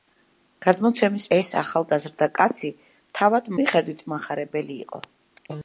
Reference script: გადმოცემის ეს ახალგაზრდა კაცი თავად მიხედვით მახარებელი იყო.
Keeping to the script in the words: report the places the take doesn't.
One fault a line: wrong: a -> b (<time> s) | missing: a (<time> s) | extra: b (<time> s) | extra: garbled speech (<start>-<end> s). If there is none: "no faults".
no faults